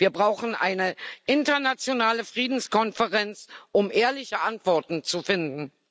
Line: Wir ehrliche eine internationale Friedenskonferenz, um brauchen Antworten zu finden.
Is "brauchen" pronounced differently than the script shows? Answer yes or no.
yes